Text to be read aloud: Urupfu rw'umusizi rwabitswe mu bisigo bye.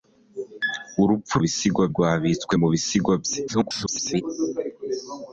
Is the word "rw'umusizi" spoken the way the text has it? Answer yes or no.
no